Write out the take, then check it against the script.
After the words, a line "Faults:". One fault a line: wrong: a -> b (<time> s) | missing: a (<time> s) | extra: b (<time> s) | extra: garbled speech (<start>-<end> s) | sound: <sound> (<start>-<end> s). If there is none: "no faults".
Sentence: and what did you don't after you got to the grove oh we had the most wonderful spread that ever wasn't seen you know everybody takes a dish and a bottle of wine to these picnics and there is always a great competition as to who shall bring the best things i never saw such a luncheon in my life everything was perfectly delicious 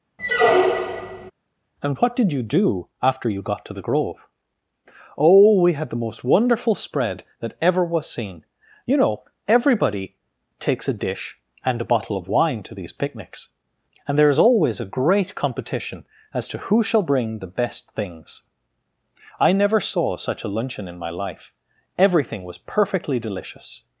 and what did you do after you got to the grove oh we had the most wonderful spread that ever was seen you know everybody takes a dish and a bottle of wine to these picnics and there is always a great competition as to who shall bring the best things i never saw such a luncheon in my life everything was perfectly delicious
Faults:
sound: squeak (0.2-1.3 s)
wrong: don't -> do (2.4 s)
wrong: wasn't -> was (7.8 s)